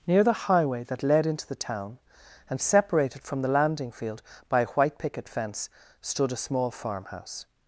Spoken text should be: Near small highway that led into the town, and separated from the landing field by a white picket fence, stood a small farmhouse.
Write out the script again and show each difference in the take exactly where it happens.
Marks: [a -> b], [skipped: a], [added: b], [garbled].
Near [small -> the] highway that led into the town, and separated from the landing field by a white picket fence, stood a small farmhouse.